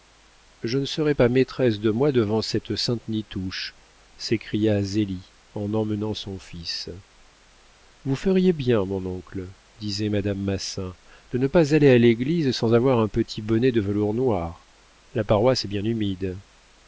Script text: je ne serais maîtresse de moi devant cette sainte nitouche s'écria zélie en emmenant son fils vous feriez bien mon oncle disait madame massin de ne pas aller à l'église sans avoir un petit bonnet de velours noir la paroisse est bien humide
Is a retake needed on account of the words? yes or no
yes